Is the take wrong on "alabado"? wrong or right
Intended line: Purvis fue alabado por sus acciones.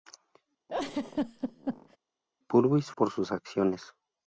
wrong